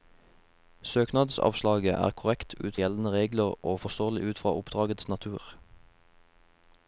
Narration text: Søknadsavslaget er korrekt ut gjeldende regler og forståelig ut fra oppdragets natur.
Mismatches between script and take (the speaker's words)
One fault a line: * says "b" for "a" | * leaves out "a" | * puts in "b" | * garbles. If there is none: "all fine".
all fine